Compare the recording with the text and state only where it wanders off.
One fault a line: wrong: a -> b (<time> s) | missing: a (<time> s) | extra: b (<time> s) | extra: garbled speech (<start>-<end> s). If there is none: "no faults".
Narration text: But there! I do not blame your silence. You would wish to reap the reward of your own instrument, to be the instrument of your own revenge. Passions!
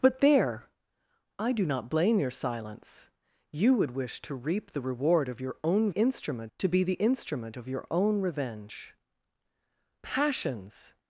no faults